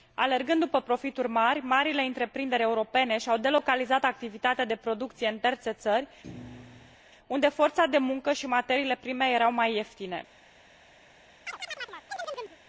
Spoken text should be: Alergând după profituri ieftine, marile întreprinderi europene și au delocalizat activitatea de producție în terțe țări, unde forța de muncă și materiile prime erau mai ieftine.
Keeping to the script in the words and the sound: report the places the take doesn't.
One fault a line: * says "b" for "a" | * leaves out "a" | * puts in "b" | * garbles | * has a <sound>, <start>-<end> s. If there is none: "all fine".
* says "mari" for "ieftine"
* has a thud, 6.2-7.0 s
* has a chirp, 11.5-12.6 s